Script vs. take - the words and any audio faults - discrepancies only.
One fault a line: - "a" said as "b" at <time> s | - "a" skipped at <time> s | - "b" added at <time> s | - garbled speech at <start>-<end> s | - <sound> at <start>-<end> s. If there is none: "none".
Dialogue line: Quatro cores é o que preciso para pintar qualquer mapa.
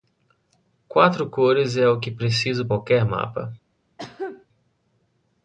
- "para pintar" skipped at 2.7 s
- cough at 4.0-4.5 s